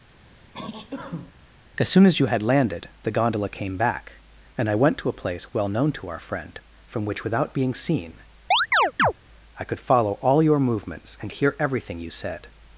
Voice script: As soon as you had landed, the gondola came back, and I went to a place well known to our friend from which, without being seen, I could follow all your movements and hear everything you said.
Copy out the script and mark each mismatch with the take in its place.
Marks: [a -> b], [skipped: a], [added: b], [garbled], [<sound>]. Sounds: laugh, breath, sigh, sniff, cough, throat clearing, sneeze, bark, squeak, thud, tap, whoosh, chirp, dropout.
[sneeze] As soon as you had landed, the gondola came back, and I went to a place well known to our friend from which, without being seen, [chirp] I could follow all your movements and hear everything you said.